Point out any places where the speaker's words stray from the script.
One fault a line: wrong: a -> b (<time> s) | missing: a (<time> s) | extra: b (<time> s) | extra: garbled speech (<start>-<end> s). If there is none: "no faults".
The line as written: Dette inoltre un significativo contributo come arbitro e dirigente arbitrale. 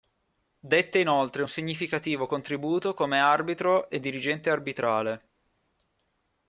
no faults